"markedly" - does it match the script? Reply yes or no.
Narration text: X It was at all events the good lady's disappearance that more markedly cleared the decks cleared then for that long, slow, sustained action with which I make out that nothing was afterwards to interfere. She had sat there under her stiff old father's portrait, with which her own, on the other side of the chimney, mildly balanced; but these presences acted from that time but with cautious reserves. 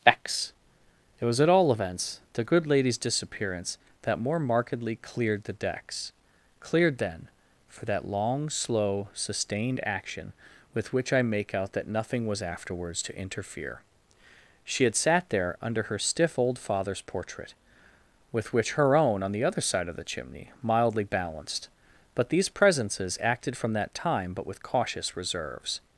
yes